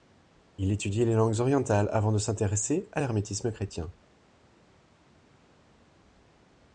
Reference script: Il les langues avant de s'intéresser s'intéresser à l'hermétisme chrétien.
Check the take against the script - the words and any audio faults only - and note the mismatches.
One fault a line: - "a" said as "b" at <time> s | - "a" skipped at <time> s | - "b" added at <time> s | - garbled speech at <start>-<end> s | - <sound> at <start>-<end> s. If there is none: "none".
- "étudie" added at 0.7 s
- "orientales" added at 1.4 s
- "s'intéresser" skipped at 2.9 s